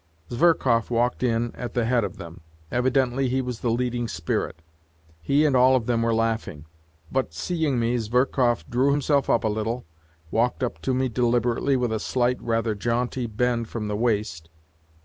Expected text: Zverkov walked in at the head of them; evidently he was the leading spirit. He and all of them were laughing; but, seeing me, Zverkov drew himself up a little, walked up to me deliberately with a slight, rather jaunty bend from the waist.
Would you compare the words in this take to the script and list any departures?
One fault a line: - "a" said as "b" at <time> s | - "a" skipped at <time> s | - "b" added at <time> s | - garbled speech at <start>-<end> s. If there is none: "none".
none